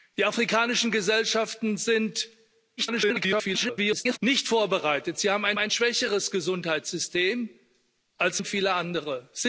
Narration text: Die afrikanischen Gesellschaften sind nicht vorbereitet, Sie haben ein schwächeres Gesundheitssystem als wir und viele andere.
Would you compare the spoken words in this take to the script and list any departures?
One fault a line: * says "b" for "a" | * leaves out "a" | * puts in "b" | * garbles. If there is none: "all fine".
* garbles
* puts in "ein"
* leaves out "wir"